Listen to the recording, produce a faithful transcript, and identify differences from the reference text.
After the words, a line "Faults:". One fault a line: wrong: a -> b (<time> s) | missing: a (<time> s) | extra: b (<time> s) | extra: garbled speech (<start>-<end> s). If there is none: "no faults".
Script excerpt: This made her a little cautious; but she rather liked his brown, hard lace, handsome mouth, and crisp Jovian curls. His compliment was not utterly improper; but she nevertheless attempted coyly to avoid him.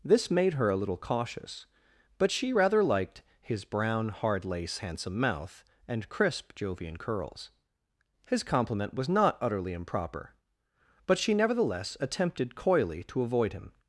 This made her a little cautious; but she rather liked his brown, hard lace, handsome mouth, and crisp Jovian curls. His compliment was not utterly improper; but she nevertheless attempted coyly to avoid him.
Faults:
no faults